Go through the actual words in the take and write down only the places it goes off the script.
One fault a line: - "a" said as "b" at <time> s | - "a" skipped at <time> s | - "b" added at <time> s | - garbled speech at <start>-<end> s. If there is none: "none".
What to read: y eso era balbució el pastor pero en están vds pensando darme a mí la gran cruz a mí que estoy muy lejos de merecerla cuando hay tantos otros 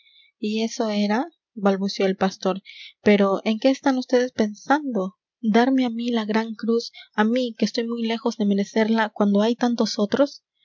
- "qué" added at 3.6 s